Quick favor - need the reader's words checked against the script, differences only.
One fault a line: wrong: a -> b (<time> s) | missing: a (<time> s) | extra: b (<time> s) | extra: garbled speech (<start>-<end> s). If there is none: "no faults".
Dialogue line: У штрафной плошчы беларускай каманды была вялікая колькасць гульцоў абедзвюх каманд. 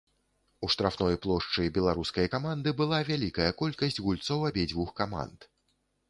no faults